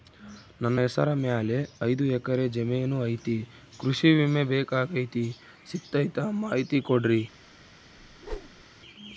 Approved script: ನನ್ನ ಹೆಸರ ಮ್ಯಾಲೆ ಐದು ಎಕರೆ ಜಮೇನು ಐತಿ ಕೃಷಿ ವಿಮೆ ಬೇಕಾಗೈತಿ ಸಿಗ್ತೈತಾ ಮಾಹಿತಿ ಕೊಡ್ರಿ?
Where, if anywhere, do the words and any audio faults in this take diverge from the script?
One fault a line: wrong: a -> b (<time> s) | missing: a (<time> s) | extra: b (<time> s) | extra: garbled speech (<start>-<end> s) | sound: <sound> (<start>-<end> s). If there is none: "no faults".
sound: whoosh (8.0-8.6 s)